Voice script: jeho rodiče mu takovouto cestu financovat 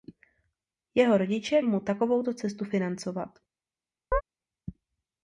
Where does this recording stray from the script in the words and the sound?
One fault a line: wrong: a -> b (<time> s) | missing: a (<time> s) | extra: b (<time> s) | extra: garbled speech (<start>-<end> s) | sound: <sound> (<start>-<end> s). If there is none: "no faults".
sound: chirp (4.1-4.2 s)